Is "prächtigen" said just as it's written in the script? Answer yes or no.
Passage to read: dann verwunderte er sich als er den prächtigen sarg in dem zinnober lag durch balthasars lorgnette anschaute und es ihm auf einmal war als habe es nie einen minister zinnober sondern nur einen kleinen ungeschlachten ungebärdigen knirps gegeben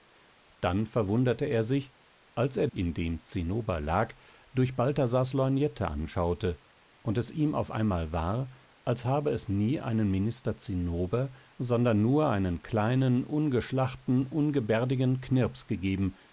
no